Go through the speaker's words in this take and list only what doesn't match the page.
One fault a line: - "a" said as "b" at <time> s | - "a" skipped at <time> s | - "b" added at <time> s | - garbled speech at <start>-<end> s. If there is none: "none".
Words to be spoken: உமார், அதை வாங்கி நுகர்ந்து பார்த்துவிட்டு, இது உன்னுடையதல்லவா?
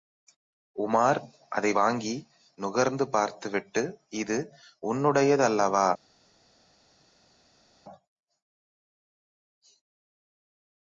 none